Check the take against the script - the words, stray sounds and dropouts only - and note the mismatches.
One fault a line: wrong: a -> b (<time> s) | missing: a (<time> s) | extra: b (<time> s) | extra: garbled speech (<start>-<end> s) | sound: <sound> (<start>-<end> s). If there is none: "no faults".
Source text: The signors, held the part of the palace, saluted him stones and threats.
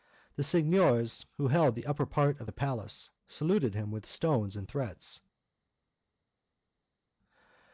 extra: who (1.4 s)
extra: upper (1.9 s)
extra: with (3.9 s)